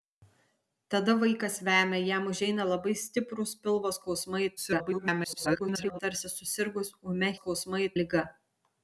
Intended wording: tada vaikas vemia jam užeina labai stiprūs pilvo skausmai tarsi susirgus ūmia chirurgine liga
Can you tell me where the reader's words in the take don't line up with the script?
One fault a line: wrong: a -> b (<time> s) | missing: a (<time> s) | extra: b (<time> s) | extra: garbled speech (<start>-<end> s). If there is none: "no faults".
extra: garbled speech (4.6-6.0 s)
wrong: chirurgine -> skausmai (7.4 s)